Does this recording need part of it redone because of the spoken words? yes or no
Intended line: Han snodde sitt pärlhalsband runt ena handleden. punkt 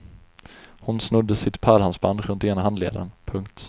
yes